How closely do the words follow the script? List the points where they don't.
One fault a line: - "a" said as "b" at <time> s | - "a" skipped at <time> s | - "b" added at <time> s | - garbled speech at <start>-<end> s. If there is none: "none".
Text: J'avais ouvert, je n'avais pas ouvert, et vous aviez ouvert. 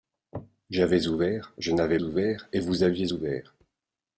- "pas" skipped at 2.0 s